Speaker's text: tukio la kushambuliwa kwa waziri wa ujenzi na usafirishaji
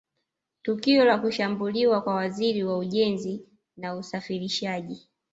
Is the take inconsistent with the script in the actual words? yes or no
no